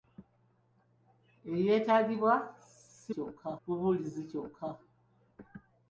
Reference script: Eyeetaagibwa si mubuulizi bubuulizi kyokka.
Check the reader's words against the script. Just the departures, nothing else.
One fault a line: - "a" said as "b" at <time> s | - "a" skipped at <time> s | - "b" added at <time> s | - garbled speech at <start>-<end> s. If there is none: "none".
- "mubuulizi" said as "kyokka" at 3.1 s